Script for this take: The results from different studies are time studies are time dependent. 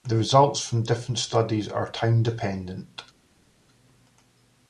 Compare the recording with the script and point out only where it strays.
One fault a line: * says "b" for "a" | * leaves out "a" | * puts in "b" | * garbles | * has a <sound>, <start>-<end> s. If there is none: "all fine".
* leaves out "studies are time"